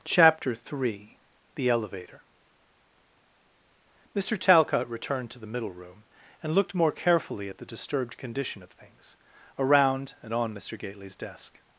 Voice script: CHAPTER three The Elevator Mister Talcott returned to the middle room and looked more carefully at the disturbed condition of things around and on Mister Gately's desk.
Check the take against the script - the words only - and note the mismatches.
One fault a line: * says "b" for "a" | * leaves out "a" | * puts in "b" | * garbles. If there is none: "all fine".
all fine